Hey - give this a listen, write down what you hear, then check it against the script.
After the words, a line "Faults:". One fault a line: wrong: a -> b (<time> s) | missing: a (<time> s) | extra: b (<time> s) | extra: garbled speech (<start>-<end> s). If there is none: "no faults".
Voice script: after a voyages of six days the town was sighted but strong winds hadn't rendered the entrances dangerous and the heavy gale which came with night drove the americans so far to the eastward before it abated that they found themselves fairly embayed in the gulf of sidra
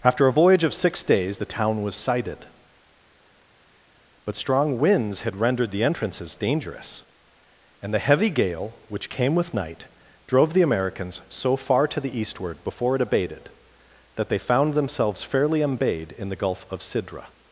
after a voyage of six days the town was sighted but strong winds had rendered the entrances dangerous and the heavy gale which came with night drove the americans so far to the eastward before it abated that they found themselves fairly embayed in the gulf of sidra
Faults:
wrong: voyages -> voyage (0.3 s)
wrong: hadn't -> had (5.2 s)